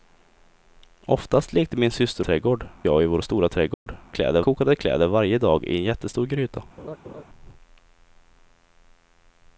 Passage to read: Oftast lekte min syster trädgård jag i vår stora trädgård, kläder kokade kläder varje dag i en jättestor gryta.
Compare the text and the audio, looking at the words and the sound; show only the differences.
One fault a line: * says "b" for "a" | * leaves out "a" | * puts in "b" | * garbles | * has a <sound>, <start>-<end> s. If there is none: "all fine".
* has a dropout, 3.7-3.9 s
* has a laugh, 6.8-7.2 s